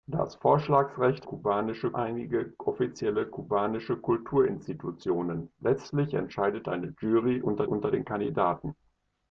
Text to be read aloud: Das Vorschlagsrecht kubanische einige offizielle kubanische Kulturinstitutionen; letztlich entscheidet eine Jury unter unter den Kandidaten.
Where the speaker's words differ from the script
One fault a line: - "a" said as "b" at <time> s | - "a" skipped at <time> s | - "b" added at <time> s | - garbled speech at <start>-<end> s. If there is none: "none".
none